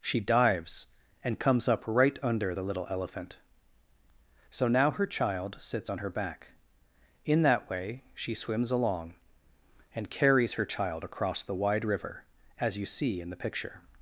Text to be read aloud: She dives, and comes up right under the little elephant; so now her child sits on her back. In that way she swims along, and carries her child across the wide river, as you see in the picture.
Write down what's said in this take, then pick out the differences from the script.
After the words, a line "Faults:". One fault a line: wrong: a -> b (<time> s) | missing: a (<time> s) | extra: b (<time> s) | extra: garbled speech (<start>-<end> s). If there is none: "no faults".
She dives, and comes up right under the little elephant; so now her child sits on her back. In that way she swims along, and carries her child across the wide river, as you see in the picture.
Faults:
no faults